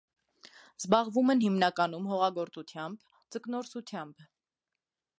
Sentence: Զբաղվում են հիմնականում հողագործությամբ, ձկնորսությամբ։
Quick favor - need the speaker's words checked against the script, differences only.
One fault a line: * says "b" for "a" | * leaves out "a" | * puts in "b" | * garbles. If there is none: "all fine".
all fine